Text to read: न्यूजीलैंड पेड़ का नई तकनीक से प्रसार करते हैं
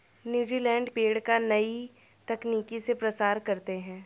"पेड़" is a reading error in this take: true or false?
false